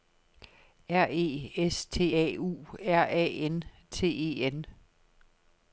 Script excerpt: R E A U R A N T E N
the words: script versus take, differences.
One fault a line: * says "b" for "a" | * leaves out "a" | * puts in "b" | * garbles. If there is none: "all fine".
* puts in "S T"